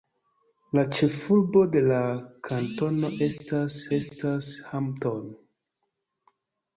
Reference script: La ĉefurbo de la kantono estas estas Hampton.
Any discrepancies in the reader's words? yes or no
no